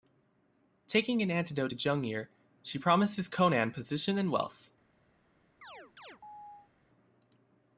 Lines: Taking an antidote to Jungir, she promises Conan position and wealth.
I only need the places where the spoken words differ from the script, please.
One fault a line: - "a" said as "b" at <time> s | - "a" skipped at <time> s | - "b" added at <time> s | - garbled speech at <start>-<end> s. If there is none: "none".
none